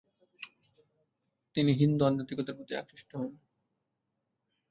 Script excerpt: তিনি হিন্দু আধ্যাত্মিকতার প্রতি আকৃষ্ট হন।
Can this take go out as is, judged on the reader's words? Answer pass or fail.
pass